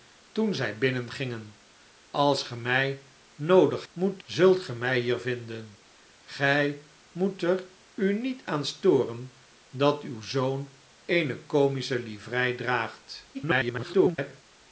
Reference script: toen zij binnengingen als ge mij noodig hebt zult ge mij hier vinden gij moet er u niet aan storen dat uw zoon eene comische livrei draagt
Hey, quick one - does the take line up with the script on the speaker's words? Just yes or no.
no